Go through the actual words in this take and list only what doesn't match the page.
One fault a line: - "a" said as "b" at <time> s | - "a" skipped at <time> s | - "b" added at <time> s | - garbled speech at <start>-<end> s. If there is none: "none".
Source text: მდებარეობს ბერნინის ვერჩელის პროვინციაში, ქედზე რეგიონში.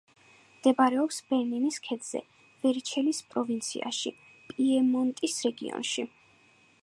- "ქედზე" added at 1.9 s
- "ქედზე" said as "პიემონტის" at 4.5 s